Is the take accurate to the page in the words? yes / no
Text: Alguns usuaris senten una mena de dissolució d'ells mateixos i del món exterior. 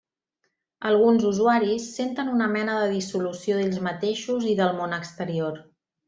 yes